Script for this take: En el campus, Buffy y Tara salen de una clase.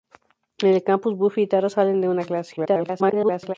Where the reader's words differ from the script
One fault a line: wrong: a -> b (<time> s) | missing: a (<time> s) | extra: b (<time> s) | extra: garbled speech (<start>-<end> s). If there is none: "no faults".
extra: garbled speech (2.6-3.5 s)